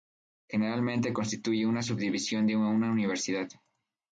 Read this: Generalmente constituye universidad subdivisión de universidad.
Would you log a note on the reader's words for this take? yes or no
yes